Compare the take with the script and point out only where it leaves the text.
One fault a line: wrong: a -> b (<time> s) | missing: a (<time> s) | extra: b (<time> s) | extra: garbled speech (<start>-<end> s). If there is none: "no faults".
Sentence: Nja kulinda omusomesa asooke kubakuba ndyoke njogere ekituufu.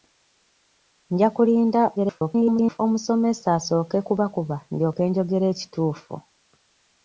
extra: garbled speech (2.0-2.8 s)